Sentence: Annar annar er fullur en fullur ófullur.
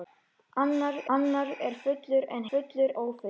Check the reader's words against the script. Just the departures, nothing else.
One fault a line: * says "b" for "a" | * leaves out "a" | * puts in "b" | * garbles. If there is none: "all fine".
all fine